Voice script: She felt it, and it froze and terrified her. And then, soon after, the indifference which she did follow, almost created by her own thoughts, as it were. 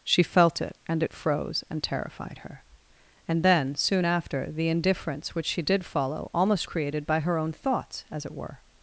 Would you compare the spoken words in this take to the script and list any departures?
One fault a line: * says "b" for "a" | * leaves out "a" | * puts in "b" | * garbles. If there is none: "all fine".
all fine